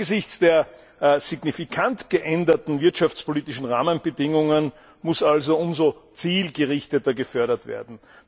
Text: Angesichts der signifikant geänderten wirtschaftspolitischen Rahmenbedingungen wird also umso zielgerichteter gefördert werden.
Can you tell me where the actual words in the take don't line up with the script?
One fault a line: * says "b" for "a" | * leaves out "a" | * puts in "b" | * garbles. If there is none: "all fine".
* says "muss" for "wird"